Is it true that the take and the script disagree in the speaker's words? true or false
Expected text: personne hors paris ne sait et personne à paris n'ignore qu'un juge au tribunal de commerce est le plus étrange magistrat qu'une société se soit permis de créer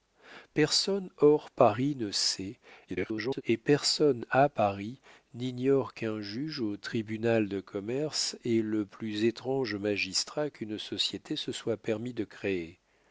true